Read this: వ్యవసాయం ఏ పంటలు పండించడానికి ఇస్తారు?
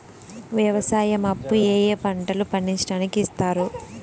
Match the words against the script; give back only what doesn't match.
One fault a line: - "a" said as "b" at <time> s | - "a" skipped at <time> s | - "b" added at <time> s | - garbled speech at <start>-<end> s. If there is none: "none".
- "అప్పు ఏ" added at 1.2 s